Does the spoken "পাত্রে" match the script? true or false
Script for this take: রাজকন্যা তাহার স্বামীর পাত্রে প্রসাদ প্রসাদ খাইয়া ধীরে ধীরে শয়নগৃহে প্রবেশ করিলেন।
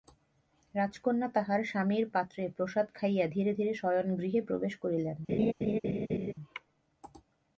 true